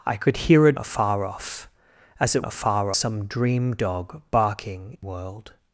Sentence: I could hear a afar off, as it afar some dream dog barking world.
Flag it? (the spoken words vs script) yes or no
no